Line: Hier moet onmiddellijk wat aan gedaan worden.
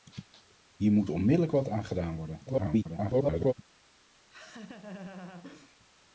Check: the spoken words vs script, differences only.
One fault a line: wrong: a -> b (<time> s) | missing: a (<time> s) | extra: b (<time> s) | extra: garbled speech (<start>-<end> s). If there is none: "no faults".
extra: garbled speech (2.5-3.5 s)